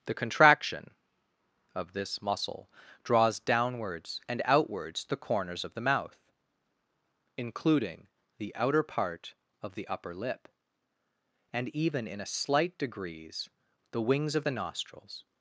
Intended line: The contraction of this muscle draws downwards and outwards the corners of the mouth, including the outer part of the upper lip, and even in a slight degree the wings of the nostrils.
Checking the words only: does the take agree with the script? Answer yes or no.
no